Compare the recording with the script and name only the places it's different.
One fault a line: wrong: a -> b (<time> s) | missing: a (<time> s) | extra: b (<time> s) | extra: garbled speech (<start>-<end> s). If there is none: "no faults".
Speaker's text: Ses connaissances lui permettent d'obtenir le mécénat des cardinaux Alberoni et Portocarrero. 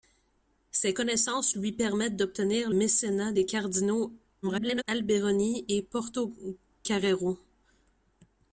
missing: le (2.7 s)
extra: garbled speech (4.4-4.8 s)